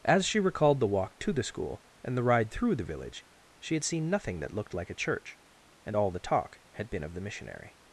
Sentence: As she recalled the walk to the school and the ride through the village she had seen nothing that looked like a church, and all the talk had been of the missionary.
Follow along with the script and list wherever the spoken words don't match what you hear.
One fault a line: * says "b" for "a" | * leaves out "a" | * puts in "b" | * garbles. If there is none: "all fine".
all fine